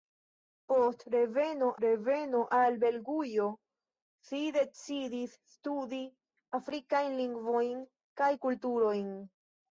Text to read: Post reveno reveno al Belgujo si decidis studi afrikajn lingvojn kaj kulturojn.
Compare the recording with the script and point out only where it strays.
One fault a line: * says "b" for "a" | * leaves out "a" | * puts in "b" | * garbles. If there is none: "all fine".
all fine